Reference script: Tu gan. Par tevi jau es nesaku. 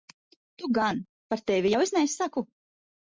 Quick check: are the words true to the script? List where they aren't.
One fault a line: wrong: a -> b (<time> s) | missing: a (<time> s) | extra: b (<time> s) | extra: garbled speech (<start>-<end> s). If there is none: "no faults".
no faults